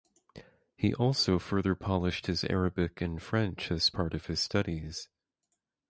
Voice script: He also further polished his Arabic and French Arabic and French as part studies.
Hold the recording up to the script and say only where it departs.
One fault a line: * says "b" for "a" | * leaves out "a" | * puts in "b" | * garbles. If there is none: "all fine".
* says "as part of his" for "Arabic and French as part"